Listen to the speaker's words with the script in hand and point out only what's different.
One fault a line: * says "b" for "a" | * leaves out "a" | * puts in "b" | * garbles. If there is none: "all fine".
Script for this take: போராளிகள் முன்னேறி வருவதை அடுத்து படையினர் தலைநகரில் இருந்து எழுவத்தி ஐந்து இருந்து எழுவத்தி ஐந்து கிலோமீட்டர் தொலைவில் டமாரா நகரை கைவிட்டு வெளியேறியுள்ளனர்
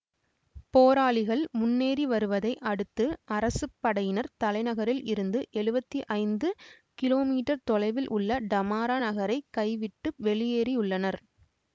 * puts in "அரசு"
* leaves out "இருந்து எழுவத்தி ஐந்து"
* puts in "உள்ள"